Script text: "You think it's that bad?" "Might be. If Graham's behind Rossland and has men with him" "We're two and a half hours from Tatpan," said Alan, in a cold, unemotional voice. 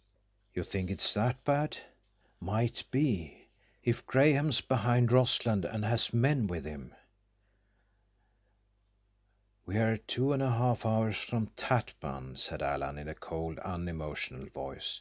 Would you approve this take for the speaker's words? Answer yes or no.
yes